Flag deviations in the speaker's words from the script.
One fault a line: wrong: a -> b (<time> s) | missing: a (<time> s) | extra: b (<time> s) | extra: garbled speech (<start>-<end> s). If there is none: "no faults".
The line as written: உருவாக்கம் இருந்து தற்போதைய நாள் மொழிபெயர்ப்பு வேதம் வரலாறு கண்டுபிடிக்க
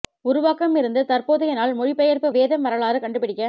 no faults